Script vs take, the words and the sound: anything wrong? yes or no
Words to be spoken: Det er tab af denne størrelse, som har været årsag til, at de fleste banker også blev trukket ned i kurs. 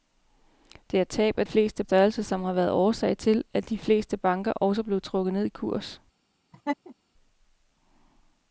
yes